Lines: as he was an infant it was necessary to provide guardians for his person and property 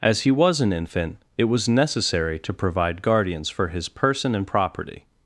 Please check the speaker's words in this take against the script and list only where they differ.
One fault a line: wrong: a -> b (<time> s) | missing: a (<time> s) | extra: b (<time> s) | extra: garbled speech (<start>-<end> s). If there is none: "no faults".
no faults